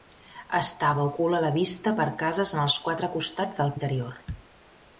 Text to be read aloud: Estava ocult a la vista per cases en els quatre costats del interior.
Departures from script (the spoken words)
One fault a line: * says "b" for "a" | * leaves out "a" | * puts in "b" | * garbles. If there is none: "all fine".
all fine